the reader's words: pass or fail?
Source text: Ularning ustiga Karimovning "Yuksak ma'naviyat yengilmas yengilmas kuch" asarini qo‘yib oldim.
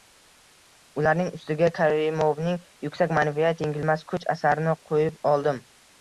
fail